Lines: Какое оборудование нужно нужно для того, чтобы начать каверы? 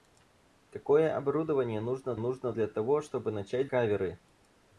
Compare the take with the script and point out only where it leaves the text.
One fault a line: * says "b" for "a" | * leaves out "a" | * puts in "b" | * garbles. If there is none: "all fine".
all fine